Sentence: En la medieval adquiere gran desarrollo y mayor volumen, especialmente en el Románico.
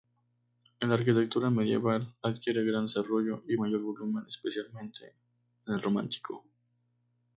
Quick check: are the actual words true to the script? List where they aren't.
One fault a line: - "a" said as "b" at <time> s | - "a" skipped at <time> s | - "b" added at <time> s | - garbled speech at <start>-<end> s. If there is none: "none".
- "arquitectura" added at 0.9 s